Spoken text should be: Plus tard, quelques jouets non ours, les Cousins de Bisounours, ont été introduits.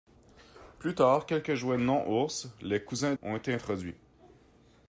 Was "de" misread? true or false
true